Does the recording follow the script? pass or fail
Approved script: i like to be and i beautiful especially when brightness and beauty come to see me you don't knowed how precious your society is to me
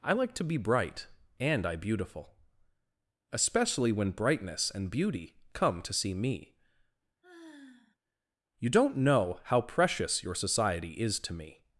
fail